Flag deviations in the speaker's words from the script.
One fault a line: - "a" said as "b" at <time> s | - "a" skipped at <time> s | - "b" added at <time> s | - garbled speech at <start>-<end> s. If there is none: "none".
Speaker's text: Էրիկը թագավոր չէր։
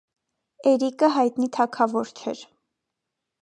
- "հայտնի" added at 1.2 s